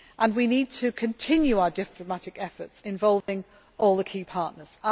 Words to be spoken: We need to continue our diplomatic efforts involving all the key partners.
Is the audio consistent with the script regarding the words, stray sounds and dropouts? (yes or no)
no